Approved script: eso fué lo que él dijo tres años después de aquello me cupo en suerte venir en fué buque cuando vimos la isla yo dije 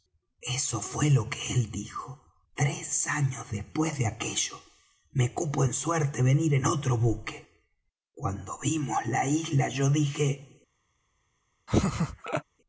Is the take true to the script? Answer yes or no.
no